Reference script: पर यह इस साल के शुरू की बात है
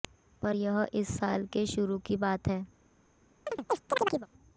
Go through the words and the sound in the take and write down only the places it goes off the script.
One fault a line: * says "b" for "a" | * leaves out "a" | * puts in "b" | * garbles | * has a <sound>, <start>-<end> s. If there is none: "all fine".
* has a chirp, 3.5-4.3 s